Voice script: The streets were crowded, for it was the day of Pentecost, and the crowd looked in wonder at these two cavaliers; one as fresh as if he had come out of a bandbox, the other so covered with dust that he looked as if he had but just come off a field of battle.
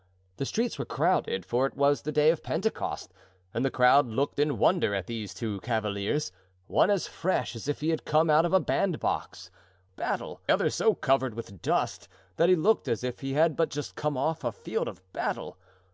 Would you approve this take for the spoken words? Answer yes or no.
no